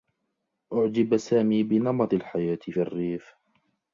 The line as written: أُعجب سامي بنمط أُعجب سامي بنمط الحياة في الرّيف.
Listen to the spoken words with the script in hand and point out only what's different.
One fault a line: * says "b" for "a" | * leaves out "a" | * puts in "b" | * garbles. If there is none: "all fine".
* leaves out "أُعجب سامي بنمط"